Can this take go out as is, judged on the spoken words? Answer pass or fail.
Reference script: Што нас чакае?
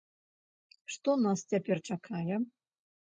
fail